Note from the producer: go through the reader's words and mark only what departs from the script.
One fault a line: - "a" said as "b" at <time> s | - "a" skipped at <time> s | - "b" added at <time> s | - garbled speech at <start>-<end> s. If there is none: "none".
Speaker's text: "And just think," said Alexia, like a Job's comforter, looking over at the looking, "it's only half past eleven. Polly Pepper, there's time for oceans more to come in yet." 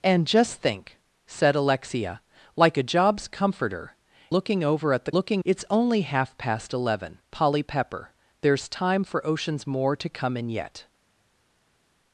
none